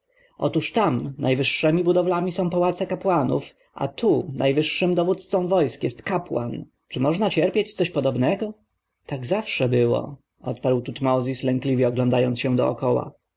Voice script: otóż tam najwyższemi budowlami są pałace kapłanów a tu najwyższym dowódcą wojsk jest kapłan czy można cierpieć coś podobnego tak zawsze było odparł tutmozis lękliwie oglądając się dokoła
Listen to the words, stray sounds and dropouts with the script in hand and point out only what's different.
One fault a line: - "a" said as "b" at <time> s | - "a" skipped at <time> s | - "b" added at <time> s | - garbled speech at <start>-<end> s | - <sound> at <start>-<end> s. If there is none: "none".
none